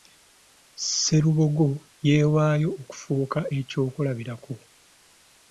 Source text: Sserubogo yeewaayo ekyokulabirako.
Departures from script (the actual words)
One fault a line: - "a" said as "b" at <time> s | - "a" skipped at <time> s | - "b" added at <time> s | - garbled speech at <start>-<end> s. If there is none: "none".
- "okufuuka" added at 2.8 s